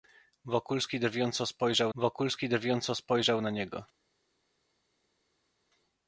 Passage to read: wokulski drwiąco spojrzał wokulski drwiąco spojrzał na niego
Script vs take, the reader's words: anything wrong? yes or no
no